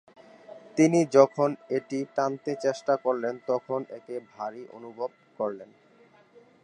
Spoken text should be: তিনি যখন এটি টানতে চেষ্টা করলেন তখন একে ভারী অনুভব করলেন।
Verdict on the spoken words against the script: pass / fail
pass